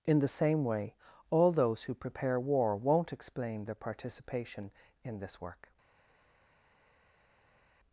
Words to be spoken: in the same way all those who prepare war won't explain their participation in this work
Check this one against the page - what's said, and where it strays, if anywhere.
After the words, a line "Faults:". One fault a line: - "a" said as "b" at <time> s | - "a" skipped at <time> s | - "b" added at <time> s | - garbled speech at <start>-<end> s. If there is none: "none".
in the same way all those who prepare war won't explain their participation in this work
Faults:
none